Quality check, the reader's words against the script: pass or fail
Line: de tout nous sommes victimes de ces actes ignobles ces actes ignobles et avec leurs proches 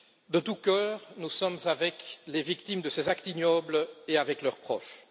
fail